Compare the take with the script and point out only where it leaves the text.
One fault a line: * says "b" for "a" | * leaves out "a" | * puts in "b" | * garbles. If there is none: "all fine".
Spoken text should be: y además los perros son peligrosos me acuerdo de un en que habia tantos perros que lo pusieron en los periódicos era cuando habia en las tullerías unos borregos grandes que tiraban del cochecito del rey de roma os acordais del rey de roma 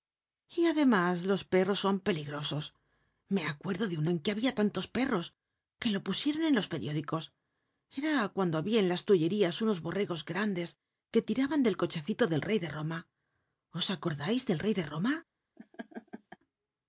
all fine